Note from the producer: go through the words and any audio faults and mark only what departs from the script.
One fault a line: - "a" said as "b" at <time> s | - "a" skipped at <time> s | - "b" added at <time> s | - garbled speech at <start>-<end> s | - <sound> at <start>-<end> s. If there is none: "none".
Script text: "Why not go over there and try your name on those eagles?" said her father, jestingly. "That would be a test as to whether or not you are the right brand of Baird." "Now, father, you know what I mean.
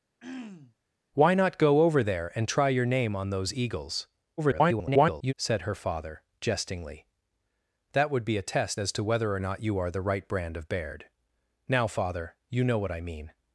- throat clearing at 0.2-0.7 s
- garbled speech at 4.4-5.3 s